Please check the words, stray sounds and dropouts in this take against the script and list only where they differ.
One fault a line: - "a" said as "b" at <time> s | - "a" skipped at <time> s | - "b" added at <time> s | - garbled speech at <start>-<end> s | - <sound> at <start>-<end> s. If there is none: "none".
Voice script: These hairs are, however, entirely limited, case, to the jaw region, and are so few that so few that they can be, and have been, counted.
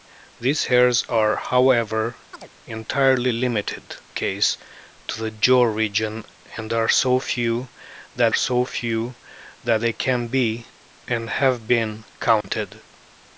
- chirp at 2.3-2.5 s
- dropout at 12.4-12.4 s